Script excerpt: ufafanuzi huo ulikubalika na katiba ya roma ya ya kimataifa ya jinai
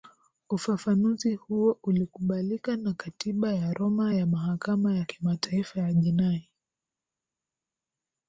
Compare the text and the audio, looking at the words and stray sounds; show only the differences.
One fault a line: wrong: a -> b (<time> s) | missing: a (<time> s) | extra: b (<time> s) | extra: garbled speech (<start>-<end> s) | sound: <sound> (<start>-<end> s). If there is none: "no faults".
extra: mahakama (4.3 s)